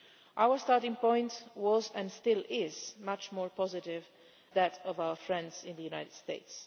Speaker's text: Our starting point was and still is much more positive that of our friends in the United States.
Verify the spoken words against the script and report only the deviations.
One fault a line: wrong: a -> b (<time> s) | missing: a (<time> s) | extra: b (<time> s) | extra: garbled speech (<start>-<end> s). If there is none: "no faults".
no faults